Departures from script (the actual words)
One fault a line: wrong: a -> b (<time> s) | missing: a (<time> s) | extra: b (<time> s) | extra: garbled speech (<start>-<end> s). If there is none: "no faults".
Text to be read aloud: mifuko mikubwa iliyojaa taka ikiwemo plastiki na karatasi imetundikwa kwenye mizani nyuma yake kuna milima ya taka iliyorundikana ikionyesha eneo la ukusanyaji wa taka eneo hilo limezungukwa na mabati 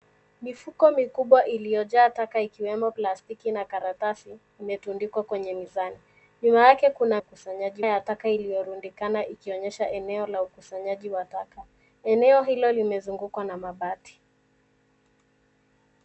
wrong: milima -> ukusanyaji (7.2 s)